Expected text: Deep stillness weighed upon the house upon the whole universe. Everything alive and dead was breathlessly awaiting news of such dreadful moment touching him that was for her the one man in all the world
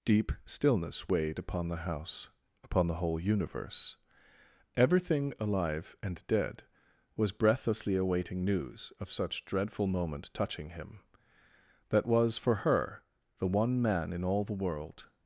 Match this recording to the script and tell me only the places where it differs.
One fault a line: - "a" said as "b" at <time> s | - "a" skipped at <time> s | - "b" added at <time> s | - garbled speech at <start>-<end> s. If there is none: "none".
none